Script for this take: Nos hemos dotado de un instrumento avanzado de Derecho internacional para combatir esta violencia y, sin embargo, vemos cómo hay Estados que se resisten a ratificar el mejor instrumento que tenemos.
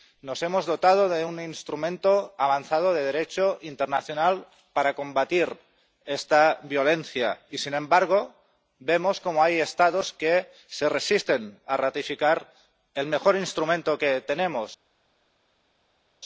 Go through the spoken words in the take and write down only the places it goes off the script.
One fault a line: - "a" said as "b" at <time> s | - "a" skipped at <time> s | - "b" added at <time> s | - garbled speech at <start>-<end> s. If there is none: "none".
none